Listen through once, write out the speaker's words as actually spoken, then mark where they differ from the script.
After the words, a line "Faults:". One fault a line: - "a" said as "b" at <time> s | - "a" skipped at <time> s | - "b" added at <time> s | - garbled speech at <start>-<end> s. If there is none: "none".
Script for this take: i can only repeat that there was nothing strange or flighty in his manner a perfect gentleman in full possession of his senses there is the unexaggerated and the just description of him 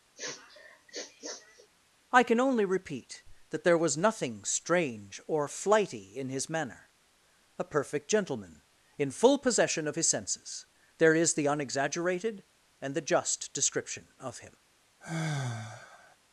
i can only repeat that there was nothing strange or flighty in his manner a perfect gentleman in full possession of his senses there is the unexaggerated and the just description of him
Faults:
none